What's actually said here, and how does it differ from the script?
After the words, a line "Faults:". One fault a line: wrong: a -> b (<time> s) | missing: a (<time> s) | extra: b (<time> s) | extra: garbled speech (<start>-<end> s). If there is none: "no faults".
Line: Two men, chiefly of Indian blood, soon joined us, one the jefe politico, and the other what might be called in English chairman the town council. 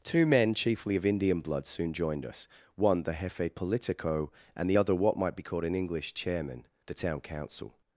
Two men, chiefly of Indian blood, soon joined us, one the jefe politico, and the other what might be called in English chairman the town council.
Faults:
no faults